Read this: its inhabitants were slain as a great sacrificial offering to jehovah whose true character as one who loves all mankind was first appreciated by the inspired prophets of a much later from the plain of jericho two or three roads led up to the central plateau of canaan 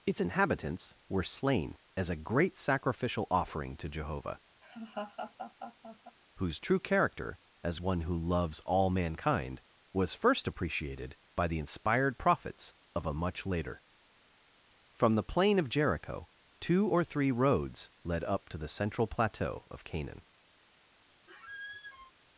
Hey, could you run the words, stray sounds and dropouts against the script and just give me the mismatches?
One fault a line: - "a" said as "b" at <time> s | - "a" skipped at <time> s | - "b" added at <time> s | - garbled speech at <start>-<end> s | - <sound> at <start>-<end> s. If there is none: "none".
- laugh at 4.6-6.2 s
- squeak at 21.3-22.1 s